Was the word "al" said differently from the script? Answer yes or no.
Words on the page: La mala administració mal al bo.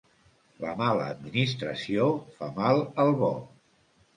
no